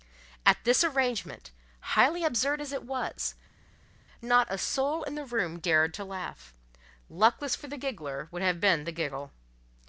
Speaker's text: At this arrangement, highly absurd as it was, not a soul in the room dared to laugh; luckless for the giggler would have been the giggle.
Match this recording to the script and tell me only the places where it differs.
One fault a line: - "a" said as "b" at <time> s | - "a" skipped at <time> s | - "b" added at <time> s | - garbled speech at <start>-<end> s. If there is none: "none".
none